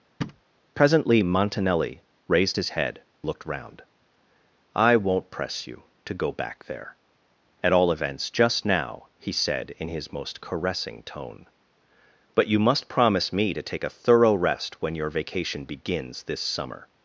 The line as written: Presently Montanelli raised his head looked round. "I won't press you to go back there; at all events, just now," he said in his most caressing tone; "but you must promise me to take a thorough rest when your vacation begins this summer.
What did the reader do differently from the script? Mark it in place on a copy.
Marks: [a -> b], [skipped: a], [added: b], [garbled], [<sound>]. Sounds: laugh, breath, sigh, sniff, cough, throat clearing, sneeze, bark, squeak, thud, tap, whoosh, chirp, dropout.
[thud] Presently Montanelli raised his head looked round. "I won't press you to go back there; at all events, just now," he said in his most caressing tone; "but you must promise me to take a thorough rest when your vacation begins this summer.